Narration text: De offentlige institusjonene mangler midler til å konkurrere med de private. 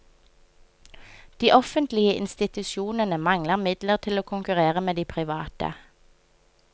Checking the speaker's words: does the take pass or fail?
pass